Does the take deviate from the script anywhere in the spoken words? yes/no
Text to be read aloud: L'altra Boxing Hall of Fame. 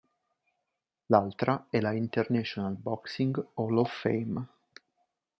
yes